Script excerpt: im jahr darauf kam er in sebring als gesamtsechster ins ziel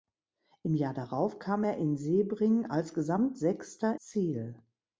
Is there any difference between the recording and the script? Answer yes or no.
yes